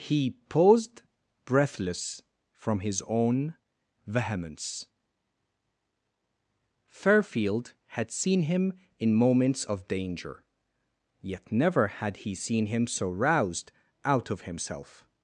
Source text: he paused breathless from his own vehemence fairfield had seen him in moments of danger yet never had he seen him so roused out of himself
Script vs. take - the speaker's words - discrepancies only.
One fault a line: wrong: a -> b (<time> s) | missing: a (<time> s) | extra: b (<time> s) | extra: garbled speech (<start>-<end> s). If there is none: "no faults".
no faults